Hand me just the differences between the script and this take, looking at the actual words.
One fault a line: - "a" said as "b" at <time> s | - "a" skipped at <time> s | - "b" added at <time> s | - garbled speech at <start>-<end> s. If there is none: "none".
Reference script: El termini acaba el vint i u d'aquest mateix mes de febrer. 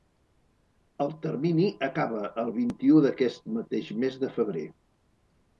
none